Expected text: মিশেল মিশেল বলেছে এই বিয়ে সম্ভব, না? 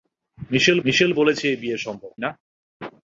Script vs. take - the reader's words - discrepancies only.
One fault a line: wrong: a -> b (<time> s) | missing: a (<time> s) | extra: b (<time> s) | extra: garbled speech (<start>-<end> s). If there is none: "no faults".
no faults